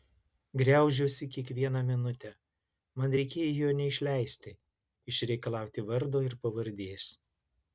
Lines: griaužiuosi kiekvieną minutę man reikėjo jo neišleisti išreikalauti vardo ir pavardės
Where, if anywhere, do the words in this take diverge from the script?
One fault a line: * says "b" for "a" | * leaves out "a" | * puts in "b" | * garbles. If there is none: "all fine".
all fine